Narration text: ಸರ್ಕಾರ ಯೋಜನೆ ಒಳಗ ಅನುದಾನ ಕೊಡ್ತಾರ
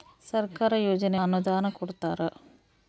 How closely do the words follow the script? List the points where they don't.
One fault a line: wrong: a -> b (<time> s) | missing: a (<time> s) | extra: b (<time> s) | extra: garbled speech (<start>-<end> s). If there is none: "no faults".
missing: ಒಳಗ (1.2 s)